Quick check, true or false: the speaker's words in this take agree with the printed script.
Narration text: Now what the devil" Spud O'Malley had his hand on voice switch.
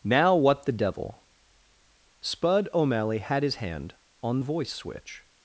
true